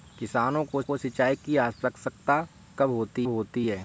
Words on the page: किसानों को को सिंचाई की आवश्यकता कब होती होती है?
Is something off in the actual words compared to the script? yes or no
no